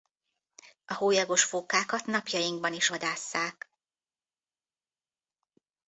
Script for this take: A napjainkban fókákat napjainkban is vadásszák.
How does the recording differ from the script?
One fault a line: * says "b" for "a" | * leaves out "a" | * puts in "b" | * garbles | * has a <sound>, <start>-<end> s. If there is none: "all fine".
* says "hólyagos" for "napjainkban"